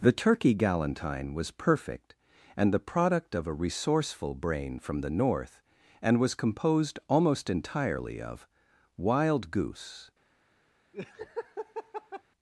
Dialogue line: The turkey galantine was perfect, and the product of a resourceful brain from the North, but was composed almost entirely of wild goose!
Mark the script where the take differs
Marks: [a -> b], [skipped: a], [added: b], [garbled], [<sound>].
The turkey galantine was perfect, and the product of a resourceful brain from the North, [but -> and] was composed almost entirely of wild goose! [laugh]